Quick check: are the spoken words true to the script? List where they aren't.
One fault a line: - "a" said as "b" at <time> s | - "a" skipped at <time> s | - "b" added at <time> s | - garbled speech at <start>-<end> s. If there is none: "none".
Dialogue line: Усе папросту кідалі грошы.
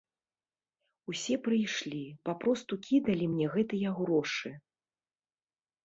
- "прыйшлі" added at 1.5 s
- "мне гэтыя" added at 3.4 s